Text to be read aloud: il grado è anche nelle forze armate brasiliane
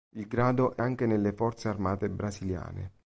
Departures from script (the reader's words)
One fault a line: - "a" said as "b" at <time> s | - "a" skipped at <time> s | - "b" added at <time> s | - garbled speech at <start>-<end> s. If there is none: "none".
none